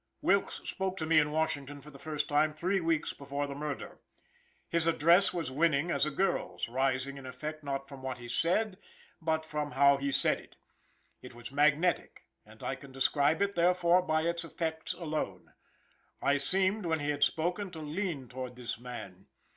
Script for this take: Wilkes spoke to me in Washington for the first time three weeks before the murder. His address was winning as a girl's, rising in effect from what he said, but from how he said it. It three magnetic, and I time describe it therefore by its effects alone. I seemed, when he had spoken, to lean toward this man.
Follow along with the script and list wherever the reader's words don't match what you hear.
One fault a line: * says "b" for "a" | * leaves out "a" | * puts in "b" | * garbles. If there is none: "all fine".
* puts in "not"
* says "was" for "three"
* says "can" for "time"